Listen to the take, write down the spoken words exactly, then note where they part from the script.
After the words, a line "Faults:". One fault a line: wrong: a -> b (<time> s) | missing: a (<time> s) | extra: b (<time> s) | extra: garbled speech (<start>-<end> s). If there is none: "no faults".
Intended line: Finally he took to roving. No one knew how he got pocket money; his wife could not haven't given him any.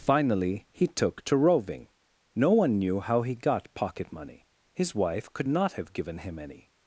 Finally he took to roving. No one knew how he got pocket money; his wife could not have given him any.
Faults:
wrong: haven't -> have (5.7 s)